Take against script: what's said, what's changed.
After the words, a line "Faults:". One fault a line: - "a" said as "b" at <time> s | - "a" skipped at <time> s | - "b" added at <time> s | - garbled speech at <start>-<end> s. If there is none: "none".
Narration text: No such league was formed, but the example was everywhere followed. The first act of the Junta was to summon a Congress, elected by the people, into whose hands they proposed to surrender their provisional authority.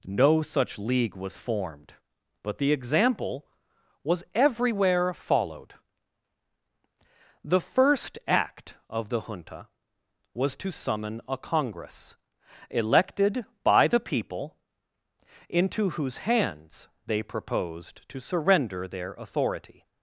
No such league was formed, but the example was everywhere followed. The first act of the Junta was to summon a Congress, elected by the people, into whose hands they proposed to surrender their authority.
Faults:
- "provisional" skipped at 19.1 s